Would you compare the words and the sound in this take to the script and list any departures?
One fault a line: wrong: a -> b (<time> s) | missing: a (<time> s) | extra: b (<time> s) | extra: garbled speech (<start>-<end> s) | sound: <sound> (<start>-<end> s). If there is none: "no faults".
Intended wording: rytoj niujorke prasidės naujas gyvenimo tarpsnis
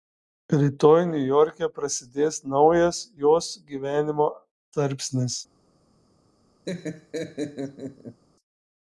extra: jos (3.2 s)
sound: laugh (6.7-8.2 s)